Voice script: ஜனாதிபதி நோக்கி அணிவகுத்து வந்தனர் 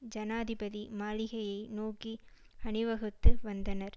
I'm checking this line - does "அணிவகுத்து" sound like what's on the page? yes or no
yes